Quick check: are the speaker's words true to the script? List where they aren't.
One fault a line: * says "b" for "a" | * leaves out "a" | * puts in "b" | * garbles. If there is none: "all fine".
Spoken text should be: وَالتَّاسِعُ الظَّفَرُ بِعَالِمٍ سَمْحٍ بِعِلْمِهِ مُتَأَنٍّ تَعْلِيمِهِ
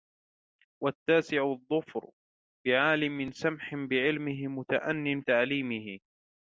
all fine